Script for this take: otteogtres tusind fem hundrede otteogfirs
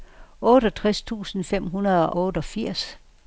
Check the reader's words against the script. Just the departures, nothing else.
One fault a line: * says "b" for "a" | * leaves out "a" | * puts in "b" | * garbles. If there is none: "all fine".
all fine